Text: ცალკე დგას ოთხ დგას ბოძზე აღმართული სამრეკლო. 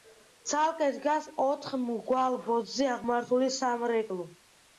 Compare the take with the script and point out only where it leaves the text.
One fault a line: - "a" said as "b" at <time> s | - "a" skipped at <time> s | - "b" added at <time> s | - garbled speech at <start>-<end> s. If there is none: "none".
- "დგას" said as "მრგვალ" at 1.8 s